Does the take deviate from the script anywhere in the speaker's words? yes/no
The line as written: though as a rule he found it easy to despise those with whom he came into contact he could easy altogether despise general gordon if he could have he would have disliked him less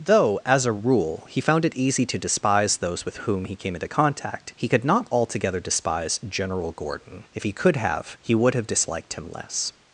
yes